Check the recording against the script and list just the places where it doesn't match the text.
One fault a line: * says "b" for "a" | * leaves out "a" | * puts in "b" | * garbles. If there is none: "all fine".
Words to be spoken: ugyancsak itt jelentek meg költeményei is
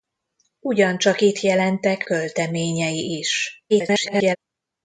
* leaves out "meg"
* garbles